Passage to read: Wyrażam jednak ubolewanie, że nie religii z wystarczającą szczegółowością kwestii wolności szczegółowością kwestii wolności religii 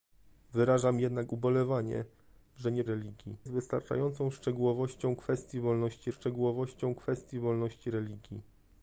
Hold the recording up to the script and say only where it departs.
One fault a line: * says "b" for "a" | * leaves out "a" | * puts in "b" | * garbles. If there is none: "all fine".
all fine